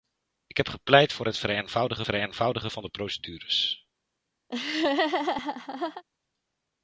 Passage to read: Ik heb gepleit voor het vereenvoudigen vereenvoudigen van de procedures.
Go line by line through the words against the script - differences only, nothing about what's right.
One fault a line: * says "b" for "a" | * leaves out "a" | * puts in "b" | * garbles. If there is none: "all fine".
all fine